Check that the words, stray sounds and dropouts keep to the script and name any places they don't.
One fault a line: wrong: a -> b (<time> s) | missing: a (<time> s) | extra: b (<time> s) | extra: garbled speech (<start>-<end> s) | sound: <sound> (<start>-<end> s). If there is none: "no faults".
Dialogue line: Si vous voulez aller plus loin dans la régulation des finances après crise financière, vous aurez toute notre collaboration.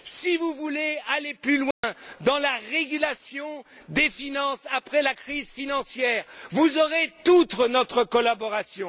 sound: dropout (1.7-1.8 s)
extra: la (5.0 s)